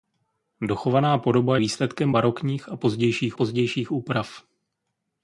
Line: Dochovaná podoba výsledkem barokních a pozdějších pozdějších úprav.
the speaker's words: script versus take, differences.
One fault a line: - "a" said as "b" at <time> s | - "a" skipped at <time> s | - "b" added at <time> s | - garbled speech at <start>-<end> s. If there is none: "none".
none